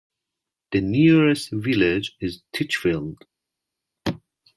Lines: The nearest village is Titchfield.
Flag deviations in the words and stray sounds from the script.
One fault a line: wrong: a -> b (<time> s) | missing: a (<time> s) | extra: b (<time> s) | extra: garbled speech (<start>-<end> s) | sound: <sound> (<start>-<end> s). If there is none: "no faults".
no faults